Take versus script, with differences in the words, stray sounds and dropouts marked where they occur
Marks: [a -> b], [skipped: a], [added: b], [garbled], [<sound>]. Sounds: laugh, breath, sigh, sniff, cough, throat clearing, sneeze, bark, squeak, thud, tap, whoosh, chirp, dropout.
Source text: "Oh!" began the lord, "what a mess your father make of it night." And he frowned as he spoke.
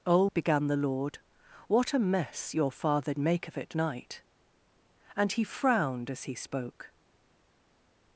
"Oh!" began the lord, "what a mess your father make of it night." And he frowned as he spoke.